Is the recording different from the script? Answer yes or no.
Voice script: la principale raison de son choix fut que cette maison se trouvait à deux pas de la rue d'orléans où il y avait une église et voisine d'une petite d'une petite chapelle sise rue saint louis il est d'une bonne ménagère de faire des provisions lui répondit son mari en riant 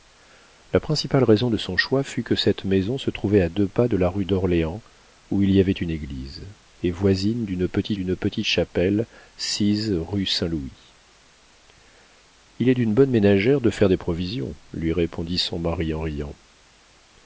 no